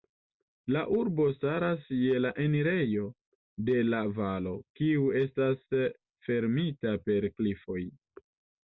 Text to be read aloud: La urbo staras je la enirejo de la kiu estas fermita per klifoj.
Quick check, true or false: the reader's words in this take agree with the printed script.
false